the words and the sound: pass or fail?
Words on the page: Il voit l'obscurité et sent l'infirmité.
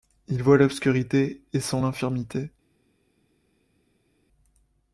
pass